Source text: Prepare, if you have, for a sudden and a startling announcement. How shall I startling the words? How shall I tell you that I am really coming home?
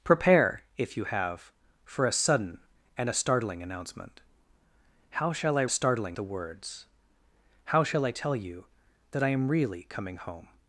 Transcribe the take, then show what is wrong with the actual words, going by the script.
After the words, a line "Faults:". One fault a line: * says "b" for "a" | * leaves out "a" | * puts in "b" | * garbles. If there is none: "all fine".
Prepare, if you have, for a sudden and a startling announcement. How shall I startling the words? How shall I tell you that I am really coming home?
Faults:
all fine